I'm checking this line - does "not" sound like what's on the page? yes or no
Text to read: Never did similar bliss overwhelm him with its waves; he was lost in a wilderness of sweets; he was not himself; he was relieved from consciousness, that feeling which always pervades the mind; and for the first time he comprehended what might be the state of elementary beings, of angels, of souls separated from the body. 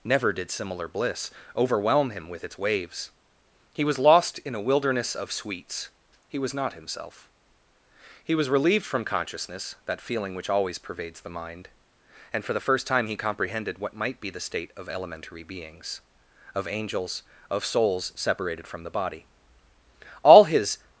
yes